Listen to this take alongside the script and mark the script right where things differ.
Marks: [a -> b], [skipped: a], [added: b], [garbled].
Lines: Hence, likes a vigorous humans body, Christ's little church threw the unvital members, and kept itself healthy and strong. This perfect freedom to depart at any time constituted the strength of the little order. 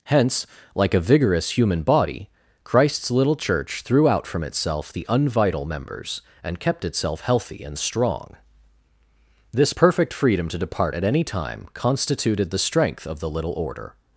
Hence, [likes -> like] a vigorous [humans -> human] body, Christ's little church threw [added: out from itself] the unvital members, and kept itself healthy and strong. This perfect freedom to depart at any time constituted the strength of the little order.